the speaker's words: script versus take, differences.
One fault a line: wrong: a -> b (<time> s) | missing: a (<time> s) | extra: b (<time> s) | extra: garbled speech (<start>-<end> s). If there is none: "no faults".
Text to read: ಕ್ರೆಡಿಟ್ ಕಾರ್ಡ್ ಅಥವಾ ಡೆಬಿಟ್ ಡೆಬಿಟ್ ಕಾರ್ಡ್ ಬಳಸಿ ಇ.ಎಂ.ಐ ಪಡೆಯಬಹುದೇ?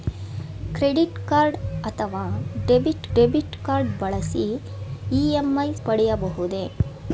no faults